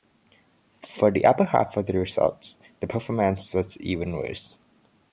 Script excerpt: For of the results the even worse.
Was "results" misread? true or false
false